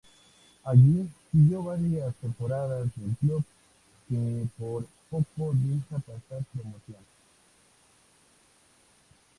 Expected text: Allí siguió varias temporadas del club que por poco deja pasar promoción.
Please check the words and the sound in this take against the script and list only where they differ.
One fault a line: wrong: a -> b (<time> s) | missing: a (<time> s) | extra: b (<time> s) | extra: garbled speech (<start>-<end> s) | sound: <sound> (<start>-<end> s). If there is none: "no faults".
no faults